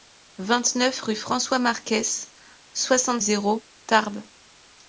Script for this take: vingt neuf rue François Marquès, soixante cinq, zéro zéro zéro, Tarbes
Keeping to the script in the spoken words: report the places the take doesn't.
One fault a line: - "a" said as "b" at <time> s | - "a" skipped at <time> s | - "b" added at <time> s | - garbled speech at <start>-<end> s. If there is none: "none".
- "cinq zéro zéro" skipped at 3.2 s